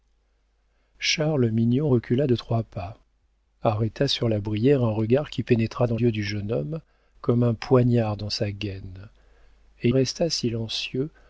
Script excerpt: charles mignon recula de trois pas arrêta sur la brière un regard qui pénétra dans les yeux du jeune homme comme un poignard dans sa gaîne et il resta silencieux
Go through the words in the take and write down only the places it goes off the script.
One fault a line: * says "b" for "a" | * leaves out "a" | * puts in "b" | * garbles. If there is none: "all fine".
* leaves out "les"
* leaves out "il"